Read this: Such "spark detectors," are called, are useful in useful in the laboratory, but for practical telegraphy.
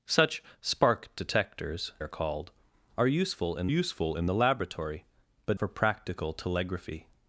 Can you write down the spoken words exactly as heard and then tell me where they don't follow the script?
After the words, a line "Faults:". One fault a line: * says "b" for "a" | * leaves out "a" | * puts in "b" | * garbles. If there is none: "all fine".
Such "spark detectors," are called, are useful in useful in the laboratory, but for practical telegraphy.
Faults:
all fine